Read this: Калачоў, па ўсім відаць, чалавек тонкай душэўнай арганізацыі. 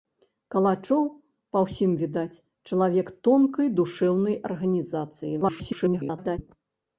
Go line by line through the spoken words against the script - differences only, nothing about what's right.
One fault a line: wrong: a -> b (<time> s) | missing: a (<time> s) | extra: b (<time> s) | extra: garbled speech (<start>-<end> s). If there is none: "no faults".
extra: garbled speech (5.4-6.4 s)